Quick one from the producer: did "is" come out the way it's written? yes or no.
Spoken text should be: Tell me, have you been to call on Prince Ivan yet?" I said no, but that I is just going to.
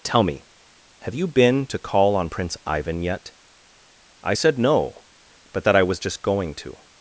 no